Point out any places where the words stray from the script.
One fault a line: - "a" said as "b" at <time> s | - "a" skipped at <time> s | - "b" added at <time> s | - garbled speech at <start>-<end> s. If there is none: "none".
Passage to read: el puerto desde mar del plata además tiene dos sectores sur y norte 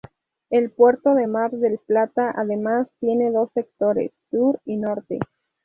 - "desde" said as "de" at 1.1 s